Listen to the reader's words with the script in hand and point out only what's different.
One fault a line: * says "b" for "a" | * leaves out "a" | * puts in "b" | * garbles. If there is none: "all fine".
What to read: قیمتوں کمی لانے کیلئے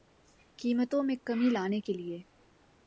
* puts in "میں"